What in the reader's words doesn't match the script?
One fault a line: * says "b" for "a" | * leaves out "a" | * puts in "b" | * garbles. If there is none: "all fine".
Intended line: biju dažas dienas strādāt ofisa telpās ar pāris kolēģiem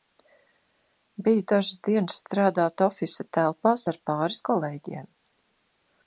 all fine